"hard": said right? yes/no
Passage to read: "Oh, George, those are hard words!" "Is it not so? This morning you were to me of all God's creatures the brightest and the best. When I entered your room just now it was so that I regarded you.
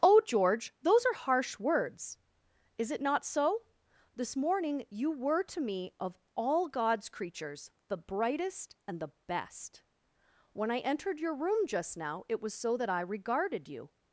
no